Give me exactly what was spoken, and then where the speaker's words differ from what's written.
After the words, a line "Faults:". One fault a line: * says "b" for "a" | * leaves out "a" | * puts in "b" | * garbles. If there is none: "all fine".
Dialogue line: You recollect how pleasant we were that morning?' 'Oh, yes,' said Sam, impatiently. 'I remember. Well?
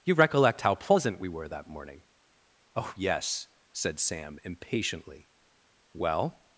You recollect how pleasant we were that morning?' 'Oh, yes,' said Sam, impatiently. 'Well?
Faults:
* leaves out "I remember"